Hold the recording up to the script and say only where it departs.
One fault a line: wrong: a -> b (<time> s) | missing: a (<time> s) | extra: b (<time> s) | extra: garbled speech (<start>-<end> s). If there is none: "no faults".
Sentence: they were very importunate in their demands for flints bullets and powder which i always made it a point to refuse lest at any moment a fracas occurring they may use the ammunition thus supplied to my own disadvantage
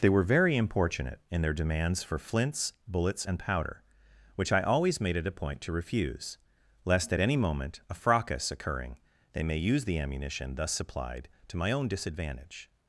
no faults